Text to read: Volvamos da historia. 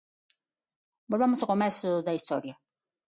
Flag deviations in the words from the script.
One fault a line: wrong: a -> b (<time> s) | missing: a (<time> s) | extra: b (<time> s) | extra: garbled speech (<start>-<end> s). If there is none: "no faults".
extra: ao comezo (1.4 s)